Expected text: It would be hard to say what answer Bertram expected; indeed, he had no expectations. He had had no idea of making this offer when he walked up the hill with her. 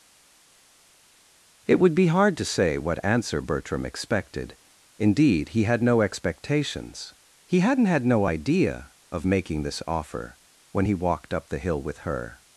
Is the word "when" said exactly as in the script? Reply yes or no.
yes